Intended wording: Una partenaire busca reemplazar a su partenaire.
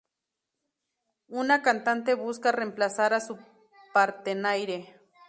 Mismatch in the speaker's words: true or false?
true